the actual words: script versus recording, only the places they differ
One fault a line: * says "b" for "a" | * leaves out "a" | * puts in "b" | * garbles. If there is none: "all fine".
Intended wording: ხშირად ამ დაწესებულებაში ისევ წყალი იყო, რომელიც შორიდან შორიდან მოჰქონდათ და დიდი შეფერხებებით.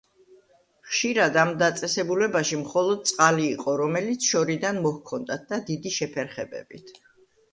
* says "მხოლოდ" for "ისევ"
* leaves out "შორიდან"